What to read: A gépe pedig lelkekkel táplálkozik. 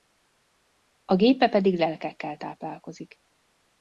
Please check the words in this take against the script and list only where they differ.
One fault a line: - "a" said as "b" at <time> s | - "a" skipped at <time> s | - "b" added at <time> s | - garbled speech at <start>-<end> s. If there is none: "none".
none